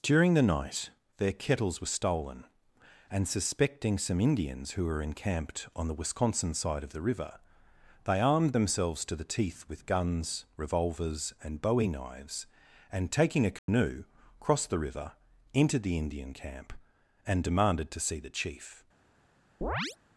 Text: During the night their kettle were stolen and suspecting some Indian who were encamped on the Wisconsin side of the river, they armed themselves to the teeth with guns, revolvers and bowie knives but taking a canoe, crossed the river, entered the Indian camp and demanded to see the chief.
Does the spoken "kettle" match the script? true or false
false